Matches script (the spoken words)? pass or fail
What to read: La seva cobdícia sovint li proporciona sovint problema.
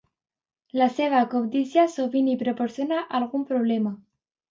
fail